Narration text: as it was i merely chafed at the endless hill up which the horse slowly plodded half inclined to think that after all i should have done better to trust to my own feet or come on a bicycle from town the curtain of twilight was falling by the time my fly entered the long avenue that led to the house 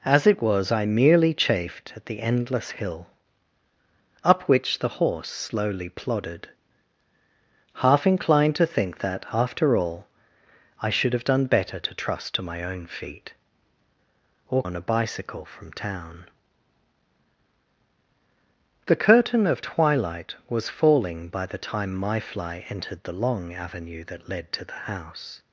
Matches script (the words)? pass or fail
fail